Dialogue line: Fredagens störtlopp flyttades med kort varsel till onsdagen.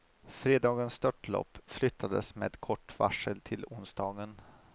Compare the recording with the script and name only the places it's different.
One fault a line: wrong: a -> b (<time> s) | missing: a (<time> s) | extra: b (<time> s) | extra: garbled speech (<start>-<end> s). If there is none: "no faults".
no faults